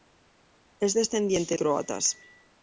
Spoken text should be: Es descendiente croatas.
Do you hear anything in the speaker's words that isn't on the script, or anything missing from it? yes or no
no